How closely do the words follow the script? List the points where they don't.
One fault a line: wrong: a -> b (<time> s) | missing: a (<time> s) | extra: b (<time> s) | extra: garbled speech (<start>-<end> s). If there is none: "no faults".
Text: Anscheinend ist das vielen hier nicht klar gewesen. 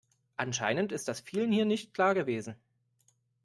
no faults